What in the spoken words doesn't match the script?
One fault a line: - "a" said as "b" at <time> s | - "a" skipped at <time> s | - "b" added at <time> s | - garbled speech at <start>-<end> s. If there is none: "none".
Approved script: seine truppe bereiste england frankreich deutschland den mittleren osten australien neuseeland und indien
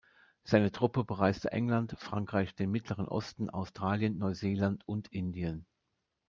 - "deutschland" skipped at 2.6 s